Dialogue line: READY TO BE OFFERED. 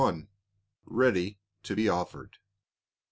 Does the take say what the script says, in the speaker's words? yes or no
yes